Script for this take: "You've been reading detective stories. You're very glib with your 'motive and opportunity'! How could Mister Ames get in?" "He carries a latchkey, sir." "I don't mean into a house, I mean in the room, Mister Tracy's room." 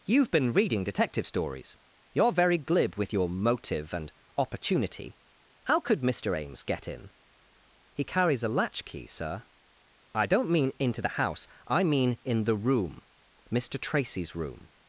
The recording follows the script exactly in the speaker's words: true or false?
false